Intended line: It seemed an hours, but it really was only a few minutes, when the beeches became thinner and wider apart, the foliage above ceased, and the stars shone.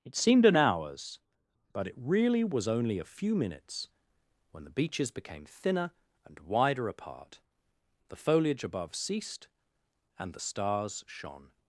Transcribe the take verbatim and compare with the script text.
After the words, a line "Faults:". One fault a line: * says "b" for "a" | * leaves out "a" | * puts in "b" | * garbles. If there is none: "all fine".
It seemed an hours, but it really was only a few minutes, when the beeches became thinner and wider apart, the foliage above ceased, and the stars shone.
Faults:
all fine